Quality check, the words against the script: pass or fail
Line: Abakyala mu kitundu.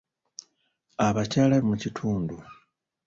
pass